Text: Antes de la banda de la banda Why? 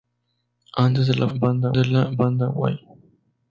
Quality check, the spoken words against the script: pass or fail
pass